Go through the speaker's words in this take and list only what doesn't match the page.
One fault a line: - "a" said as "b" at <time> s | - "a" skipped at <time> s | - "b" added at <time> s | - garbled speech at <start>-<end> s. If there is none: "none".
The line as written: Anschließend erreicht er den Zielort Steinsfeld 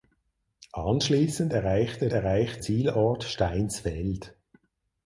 - "den" said as "erreicht" at 2.1 s